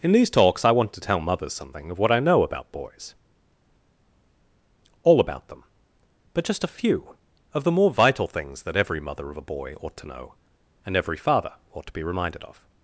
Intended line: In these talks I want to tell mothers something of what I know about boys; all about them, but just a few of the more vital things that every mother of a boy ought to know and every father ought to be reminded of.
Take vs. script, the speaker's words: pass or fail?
pass